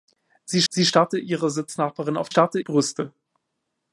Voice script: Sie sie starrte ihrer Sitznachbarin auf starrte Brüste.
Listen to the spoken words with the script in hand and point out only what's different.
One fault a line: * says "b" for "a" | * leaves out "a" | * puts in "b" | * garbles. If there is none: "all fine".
all fine